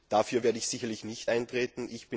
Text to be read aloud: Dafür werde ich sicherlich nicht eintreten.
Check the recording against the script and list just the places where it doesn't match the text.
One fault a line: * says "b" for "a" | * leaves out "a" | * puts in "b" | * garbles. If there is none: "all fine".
all fine